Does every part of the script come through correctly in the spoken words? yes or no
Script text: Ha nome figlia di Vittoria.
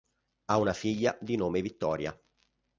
no